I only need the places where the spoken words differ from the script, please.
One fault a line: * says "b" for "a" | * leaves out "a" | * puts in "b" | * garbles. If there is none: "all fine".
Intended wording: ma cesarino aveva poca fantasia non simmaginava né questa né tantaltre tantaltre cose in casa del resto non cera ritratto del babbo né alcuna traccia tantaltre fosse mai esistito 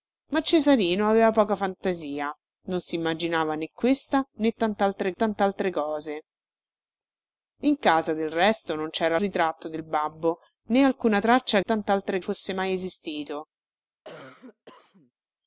all fine